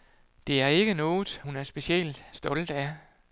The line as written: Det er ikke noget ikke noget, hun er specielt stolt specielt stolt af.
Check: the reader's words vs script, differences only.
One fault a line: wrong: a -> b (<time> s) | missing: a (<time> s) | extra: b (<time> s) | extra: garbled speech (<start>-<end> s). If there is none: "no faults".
missing: ikke noget (1.4 s)
missing: specielt stolt (2.7 s)